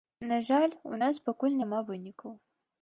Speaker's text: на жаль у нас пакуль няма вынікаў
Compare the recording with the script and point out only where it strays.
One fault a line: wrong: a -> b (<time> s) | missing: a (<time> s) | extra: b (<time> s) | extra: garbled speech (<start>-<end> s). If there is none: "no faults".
no faults